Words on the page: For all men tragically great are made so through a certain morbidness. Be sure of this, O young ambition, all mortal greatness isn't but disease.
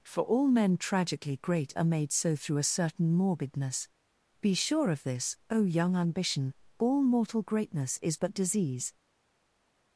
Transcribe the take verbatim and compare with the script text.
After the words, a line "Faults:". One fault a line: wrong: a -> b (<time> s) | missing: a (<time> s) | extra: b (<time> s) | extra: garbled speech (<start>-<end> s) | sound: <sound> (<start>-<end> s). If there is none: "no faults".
For all men tragically great are made so through a certain morbidness. Be sure of this, O young ambition, all mortal greatness is but disease.
Faults:
wrong: isn't -> is (8.0 s)